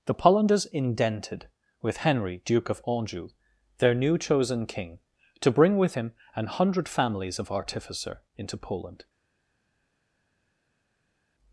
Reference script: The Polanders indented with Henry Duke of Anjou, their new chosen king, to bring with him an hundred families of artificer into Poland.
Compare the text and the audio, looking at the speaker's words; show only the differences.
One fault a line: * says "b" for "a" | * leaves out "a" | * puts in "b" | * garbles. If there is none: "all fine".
all fine